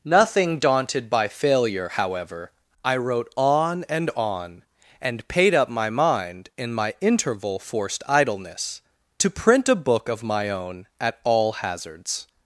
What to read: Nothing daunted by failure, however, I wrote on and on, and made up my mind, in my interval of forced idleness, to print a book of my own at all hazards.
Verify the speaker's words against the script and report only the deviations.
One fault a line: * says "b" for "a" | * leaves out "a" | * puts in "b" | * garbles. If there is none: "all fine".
* says "paid" for "made"
* leaves out "of"